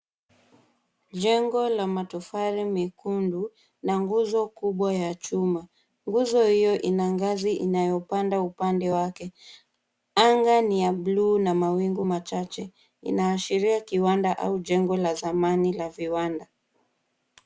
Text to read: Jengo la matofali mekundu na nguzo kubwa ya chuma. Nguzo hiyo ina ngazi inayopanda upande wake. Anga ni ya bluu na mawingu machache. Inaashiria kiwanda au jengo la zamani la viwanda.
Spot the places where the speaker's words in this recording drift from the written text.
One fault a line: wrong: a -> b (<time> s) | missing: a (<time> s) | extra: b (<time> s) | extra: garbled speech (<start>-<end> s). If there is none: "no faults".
no faults